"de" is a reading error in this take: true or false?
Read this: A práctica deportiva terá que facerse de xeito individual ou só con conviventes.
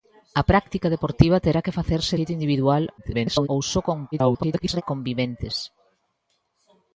true